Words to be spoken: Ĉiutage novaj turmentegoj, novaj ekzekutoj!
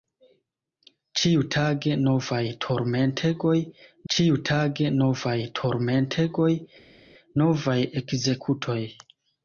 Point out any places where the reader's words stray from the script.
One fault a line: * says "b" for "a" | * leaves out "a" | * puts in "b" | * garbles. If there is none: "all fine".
* puts in "ĉiutage novaj turmentegoj"